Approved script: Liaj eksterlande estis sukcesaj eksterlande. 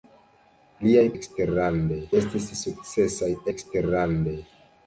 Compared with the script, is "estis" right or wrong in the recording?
right